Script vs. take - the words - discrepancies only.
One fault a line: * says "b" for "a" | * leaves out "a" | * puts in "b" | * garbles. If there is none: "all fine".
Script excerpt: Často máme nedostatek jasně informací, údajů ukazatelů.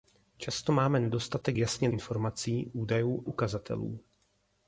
all fine